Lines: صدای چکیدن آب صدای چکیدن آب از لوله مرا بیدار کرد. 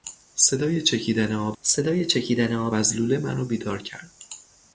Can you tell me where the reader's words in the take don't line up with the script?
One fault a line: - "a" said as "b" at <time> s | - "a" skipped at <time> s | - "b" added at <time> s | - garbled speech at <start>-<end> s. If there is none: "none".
none